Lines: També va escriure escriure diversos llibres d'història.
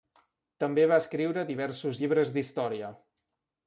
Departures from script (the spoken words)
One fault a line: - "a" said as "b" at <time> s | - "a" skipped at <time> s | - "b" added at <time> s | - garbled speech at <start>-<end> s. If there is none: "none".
- "escriure" skipped at 1.4 s